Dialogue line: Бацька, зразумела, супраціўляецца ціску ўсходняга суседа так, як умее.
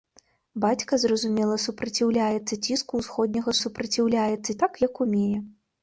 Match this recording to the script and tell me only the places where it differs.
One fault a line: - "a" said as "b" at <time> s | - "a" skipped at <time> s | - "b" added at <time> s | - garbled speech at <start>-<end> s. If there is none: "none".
- "суседа" said as "супраціўляецца" at 3.6 s